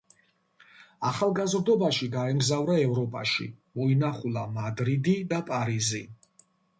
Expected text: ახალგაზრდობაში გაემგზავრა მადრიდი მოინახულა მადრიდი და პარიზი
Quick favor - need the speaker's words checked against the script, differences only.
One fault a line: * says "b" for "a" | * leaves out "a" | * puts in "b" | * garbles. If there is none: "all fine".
* says "ევროპაში" for "მადრიდი"